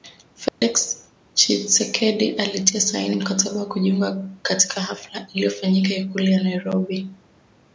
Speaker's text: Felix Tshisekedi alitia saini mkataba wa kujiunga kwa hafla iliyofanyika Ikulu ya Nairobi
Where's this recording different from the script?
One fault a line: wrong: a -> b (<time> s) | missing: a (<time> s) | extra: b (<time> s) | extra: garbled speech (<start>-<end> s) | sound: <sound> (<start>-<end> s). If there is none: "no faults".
sound: dropout (0.5-0.6 s)
wrong: kwa -> katika (4.4 s)